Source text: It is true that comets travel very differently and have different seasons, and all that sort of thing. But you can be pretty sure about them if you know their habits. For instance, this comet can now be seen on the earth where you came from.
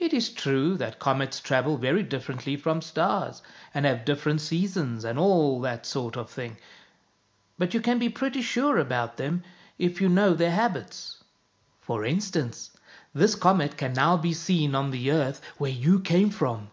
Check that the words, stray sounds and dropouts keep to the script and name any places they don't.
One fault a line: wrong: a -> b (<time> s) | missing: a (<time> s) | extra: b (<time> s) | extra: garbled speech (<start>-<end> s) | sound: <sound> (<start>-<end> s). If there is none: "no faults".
extra: from stars (2.6 s)